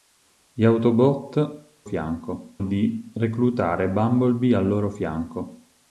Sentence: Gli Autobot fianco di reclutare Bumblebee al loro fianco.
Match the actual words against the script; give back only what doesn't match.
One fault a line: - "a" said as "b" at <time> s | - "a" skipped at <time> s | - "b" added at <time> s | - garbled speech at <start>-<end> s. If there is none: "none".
none